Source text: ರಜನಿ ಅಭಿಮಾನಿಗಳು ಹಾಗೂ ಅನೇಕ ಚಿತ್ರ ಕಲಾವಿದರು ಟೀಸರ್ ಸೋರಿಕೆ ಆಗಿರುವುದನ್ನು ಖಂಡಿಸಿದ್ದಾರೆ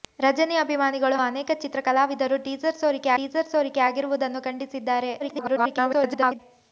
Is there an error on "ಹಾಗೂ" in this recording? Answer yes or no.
yes